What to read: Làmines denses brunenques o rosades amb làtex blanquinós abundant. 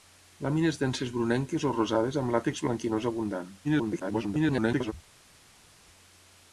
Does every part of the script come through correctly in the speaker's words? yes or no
no